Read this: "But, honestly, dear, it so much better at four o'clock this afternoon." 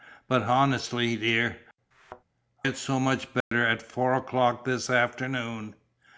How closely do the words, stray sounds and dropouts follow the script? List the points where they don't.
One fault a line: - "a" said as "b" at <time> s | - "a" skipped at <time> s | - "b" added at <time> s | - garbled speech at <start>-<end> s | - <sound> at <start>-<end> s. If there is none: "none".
- thud at 1.9-2.2 s
- dropout at 3.4-3.5 s